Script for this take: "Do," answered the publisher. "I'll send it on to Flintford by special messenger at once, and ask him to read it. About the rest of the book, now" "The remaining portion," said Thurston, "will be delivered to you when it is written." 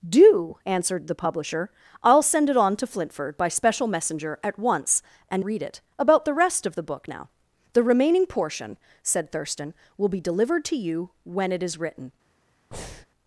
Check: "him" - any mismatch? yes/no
yes